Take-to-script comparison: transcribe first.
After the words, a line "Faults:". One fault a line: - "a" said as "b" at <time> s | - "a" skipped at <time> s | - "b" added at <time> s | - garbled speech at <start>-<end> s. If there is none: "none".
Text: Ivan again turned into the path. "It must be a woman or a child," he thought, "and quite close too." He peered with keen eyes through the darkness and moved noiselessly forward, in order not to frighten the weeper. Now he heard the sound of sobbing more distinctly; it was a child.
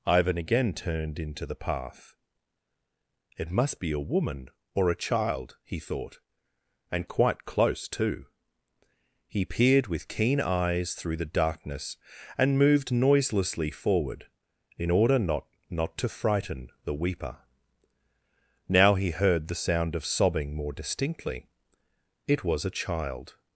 Ivan again turned into the path. "It must be a woman or a child," he thought, "and quite close too." He peered with keen eyes through the darkness and moved noiselessly forward, in order not not to frighten the weeper. Now he heard the sound of sobbing more distinctly; it was a child.
Faults:
- "not" added at 15.7 s